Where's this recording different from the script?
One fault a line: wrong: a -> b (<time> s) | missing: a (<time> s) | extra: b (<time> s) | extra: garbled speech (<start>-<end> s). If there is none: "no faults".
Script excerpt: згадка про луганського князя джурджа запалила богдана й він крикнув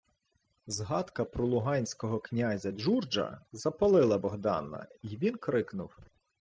no faults